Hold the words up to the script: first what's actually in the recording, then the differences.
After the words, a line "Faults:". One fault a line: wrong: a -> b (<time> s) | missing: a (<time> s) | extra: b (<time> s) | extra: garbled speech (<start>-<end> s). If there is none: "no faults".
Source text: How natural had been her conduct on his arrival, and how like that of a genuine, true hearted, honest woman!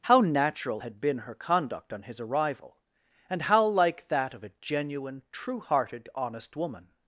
How natural had been her conduct on his arrival, and how like that of a genuine, true hearted, honest woman!
Faults:
no faults